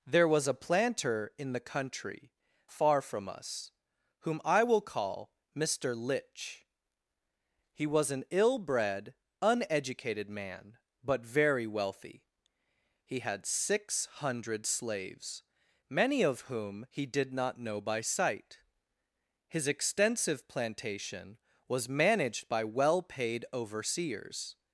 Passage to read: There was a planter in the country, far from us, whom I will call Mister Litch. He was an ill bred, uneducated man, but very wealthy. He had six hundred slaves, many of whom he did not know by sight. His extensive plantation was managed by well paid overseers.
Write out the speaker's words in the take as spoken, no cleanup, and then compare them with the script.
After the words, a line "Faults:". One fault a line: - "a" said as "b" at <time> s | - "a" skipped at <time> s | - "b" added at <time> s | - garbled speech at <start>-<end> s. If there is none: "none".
There was a planter in the country, far from us, whom I will call Mister Litch. He was an ill bred, uneducated man, but very wealthy. He had six hundred slaves, many of whom he did not know by sight. His extensive plantation was managed by well paid overseers.
Faults:
none